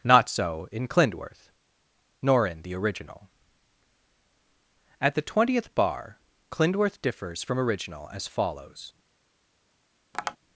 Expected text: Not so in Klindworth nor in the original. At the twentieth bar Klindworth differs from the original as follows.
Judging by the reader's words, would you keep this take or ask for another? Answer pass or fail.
fail